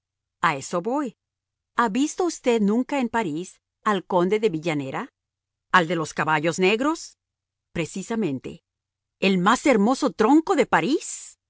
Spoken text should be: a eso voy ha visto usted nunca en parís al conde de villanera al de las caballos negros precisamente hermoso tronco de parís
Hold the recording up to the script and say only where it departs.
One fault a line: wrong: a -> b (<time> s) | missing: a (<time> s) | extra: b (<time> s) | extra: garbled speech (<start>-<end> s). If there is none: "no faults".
wrong: las -> los (5.9 s)
extra: el más (9.2 s)